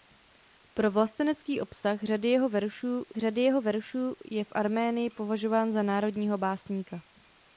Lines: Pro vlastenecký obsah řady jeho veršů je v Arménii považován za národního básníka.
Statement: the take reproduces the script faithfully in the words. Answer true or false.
false